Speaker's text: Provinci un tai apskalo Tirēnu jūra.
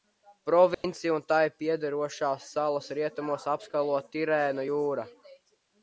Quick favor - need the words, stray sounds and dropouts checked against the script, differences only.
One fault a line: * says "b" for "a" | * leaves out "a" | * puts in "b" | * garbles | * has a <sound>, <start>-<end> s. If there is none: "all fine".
* has a dropout, 0.7-0.8 s
* puts in "piederošās salas rietumos"